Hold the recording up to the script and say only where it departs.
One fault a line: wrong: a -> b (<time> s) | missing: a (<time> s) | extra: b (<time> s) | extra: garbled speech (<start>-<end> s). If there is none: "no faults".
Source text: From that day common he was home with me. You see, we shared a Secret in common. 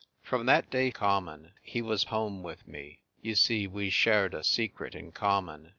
no faults